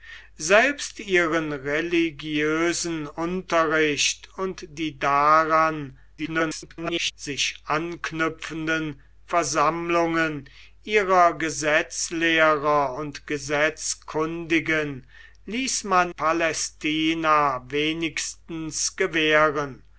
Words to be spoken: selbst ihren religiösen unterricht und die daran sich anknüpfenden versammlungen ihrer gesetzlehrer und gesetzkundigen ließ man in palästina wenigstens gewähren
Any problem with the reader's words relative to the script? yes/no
yes